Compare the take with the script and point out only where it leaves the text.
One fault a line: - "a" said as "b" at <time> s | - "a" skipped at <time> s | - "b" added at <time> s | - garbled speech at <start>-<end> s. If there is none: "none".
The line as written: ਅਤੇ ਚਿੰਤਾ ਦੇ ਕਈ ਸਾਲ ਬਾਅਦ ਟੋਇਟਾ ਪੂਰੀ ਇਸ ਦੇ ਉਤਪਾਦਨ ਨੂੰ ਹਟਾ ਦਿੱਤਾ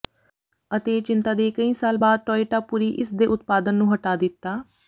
none